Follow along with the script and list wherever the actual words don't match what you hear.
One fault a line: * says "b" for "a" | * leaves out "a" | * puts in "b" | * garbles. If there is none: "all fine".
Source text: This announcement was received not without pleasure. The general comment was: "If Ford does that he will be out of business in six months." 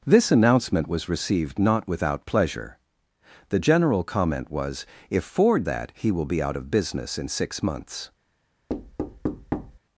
* leaves out "does"